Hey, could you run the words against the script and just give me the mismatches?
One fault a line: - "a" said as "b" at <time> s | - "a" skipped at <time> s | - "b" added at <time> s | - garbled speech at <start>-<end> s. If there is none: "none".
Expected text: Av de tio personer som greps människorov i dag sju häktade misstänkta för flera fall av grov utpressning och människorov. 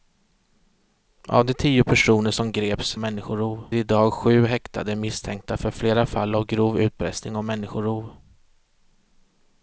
none